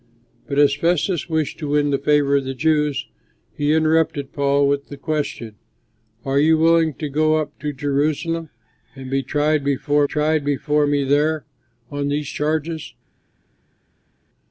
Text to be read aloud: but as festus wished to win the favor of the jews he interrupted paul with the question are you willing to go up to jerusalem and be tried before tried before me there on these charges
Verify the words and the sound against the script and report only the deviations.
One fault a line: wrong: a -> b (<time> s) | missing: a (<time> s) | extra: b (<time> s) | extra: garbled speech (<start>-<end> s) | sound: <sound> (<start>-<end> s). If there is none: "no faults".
no faults